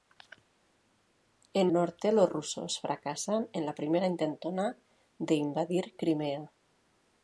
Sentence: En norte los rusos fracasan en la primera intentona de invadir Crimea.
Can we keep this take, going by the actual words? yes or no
yes